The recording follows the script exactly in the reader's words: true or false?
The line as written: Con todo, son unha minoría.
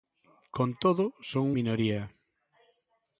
false